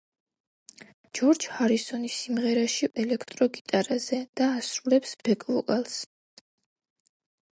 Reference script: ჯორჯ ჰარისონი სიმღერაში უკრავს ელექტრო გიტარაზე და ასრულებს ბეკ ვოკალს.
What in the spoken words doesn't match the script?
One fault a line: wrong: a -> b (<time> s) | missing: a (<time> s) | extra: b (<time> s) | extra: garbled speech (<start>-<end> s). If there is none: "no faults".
missing: უკრავს (2.9 s)